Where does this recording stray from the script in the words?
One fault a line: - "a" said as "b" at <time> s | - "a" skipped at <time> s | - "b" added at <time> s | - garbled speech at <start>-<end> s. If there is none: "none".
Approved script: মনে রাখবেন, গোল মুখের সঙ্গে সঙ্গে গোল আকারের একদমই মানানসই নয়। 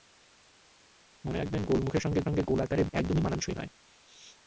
none